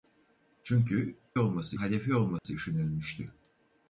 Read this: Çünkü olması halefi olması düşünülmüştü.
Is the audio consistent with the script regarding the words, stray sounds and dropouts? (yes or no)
no